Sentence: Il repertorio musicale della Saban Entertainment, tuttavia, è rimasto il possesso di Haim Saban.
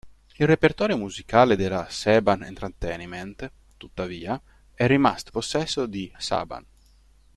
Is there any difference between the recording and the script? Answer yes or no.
yes